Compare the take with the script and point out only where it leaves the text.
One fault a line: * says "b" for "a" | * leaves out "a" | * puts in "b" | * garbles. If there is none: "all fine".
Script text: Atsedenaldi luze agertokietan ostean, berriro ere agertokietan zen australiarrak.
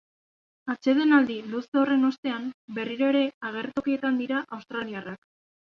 * says "horren" for "agertokietan"
* says "dira" for "zen"